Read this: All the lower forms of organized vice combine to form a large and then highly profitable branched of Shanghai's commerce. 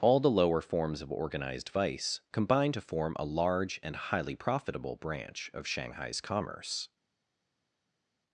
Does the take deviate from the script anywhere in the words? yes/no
yes